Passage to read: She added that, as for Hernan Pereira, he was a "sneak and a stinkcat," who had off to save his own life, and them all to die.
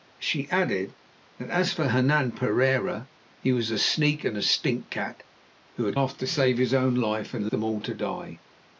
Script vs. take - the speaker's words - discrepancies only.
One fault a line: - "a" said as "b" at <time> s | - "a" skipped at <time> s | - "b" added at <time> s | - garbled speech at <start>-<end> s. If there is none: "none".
none